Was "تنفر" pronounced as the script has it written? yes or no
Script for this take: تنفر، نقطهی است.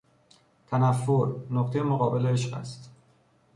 yes